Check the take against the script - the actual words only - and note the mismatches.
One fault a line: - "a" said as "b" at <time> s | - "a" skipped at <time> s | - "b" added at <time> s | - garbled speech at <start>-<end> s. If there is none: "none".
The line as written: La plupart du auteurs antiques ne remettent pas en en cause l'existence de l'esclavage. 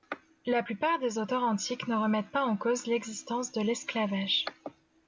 - "du" said as "des" at 1.0 s
- "en" skipped at 2.6 s